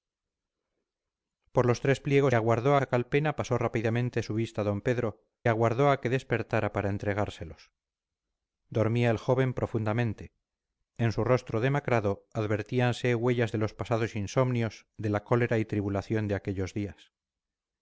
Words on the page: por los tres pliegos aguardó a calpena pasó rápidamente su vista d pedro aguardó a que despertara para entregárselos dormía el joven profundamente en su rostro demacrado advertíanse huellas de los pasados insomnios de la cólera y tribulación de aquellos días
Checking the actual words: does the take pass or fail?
pass